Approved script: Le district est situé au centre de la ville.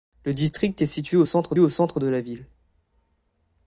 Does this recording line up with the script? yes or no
no